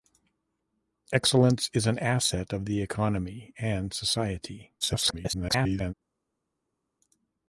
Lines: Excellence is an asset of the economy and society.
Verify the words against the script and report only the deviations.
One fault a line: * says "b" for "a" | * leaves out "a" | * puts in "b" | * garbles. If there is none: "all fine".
* garbles